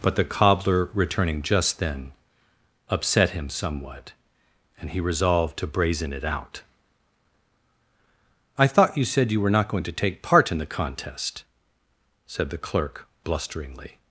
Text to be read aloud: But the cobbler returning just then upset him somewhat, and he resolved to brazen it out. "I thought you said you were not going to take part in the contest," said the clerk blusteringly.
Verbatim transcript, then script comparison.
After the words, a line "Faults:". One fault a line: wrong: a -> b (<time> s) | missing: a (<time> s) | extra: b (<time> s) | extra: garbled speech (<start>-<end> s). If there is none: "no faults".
But the cobbler returning just then upset him somewhat, and he resolved to brazen it out. "I thought you said you were not going to take part in the contest," said the clerk blusteringly.
Faults:
no faults